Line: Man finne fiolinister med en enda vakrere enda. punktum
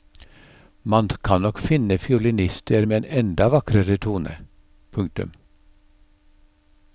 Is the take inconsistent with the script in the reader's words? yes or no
yes